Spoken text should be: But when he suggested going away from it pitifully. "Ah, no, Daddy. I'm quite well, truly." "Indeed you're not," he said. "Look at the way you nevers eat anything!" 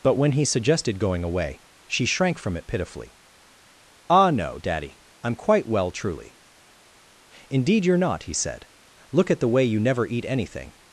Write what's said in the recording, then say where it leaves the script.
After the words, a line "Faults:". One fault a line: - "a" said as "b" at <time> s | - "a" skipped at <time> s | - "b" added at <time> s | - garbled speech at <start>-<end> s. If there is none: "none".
But when he suggested going away she shrank from it pitifully. "Ah, no, Daddy. I'm quite well, truly." "Indeed you're not," he said. "Look at the way you never eat anything!"
Faults:
- "she shrank" added at 1.9 s
- "nevers" said as "never" at 9.8 s